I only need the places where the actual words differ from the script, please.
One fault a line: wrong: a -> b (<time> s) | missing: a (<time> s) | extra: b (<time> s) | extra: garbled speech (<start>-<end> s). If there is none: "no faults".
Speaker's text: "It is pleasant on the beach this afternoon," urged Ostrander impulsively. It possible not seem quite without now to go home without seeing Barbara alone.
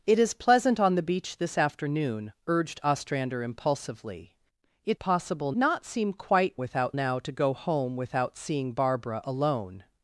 no faults